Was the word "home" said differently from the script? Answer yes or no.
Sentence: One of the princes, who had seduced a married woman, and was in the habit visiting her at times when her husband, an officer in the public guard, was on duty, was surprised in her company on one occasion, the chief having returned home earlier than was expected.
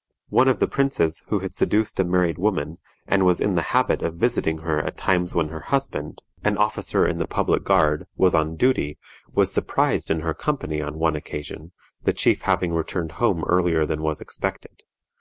no